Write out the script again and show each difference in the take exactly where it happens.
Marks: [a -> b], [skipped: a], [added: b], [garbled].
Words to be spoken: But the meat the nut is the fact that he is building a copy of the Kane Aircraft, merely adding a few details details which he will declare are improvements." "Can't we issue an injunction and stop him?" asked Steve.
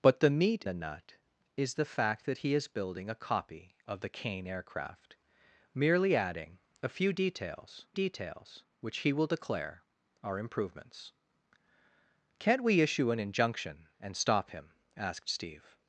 But the meat the nut is the fact that he is building a copy of the Kane Aircraft, merely adding a few details details which he will declare are improvements." "Can't we issue an injunction and stop him?" asked Steve.